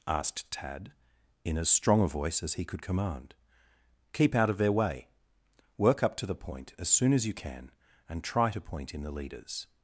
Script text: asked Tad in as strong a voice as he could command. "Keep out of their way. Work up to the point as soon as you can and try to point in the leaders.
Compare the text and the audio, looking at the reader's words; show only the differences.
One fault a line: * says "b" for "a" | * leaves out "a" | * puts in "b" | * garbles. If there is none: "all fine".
all fine